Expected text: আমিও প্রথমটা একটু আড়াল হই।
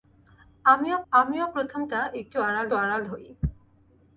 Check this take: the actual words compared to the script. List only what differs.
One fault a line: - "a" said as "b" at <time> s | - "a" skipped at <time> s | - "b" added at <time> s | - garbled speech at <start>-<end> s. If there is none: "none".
- "আমিও" added at 1.1 s
- "আড়াল" added at 2.8 s